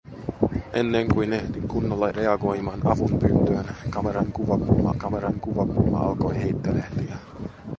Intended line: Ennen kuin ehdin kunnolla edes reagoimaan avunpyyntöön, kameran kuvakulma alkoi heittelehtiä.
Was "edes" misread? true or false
true